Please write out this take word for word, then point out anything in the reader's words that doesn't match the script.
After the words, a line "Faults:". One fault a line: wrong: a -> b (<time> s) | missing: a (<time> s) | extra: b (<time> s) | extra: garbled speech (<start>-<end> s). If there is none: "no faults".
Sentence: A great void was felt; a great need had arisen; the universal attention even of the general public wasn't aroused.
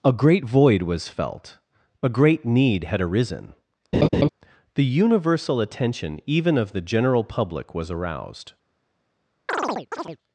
A great void was felt; a great need had arisen; the universal attention even of the general public was aroused.
Faults:
wrong: wasn't -> was (7.7 s)